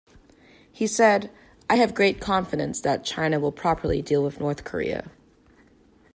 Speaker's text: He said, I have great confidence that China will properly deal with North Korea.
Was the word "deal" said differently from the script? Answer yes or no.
no